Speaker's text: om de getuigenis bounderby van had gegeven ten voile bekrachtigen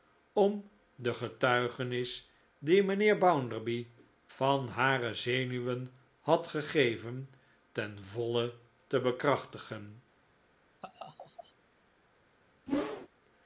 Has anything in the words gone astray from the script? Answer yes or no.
yes